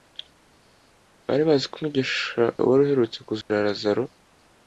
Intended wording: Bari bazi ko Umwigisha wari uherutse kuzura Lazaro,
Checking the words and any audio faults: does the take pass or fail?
fail